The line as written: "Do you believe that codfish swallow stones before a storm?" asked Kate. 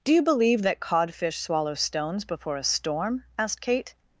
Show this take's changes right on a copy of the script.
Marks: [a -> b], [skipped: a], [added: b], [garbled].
"Do you believe that codfish swallow stones before a storm?" asked Kate.